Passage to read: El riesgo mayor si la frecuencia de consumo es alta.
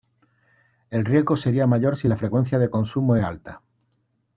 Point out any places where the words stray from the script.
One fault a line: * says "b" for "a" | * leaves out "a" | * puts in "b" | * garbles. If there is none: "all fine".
* puts in "sería"